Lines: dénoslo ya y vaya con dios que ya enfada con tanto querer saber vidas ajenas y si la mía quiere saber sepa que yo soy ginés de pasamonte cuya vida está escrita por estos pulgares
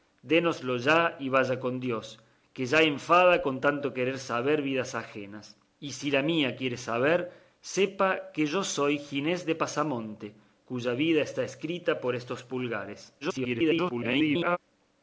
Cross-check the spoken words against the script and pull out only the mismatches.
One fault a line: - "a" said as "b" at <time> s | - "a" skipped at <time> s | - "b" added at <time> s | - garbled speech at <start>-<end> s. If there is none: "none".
- garbled speech at 13.2-14.6 s